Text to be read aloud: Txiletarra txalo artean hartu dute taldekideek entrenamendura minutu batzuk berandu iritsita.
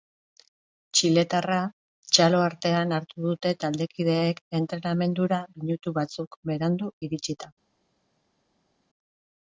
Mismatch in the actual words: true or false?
false